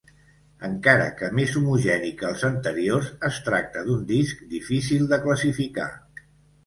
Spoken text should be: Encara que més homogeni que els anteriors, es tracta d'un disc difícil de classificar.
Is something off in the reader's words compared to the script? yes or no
no